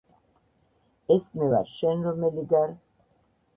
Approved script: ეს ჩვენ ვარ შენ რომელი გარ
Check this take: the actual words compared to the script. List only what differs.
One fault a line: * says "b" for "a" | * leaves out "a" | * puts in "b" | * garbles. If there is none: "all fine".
* says "მე" for "ჩვენ"